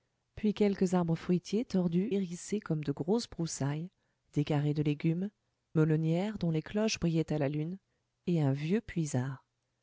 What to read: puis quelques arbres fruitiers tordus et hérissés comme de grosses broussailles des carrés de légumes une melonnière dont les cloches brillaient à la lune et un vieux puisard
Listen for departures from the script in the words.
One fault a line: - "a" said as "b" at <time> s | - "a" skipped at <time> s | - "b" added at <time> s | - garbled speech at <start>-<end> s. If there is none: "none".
- "et" skipped at 2.1 s
- "une" skipped at 5.3 s